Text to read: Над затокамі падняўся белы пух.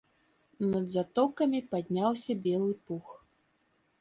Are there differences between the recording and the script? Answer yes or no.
no